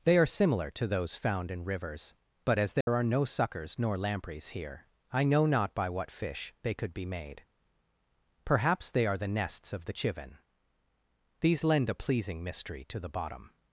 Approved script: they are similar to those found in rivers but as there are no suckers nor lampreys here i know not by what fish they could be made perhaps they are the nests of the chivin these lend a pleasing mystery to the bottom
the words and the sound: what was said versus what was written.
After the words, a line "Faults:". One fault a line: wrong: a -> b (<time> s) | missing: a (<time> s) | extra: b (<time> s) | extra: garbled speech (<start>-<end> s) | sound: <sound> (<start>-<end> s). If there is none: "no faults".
they are similar to those found in rivers but as there are no suckers nor lampreys here i know not by what fish they could be made perhaps they are the nests of the chivin these lend a pleasing mystery to the bottom
Faults:
sound: dropout (2.8-2.9 s)